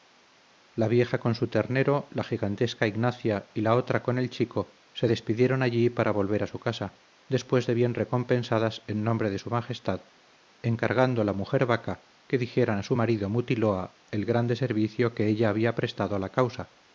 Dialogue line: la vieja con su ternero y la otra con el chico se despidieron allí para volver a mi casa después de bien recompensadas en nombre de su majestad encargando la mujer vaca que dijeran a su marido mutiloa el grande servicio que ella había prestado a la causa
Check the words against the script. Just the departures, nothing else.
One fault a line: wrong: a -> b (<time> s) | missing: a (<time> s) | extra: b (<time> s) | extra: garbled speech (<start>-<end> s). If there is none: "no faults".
extra: la gigantesca ignacia (2.1 s)
wrong: mi -> su (6.5 s)